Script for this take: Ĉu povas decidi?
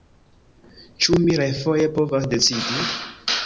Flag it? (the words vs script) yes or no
yes